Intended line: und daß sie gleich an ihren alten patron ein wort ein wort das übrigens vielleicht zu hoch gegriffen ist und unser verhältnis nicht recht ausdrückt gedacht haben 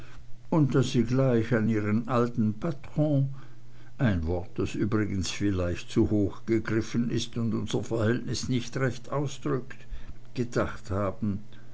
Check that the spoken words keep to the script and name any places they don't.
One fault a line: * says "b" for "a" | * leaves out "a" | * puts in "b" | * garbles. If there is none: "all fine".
* leaves out "ein wort"